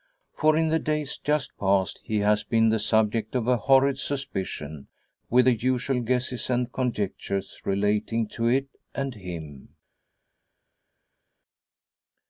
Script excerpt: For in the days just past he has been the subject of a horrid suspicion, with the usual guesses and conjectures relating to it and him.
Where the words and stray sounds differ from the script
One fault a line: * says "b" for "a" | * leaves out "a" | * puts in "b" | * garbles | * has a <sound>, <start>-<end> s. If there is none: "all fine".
all fine